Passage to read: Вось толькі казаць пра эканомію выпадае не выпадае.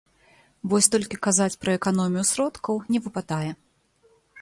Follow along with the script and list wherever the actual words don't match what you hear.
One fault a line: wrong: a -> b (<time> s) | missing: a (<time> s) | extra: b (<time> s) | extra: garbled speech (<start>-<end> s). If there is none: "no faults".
wrong: выпадае -> сродкаў (2.3 s)